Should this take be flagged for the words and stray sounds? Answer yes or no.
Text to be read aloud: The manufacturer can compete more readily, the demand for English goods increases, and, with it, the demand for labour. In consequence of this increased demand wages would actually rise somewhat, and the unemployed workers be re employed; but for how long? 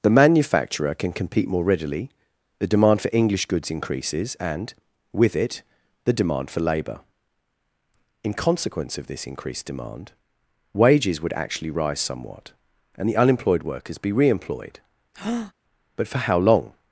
yes